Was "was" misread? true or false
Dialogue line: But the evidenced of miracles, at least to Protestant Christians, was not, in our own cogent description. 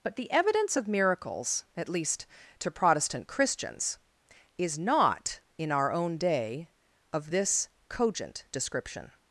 true